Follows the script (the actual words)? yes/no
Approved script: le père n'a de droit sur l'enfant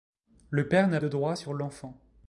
yes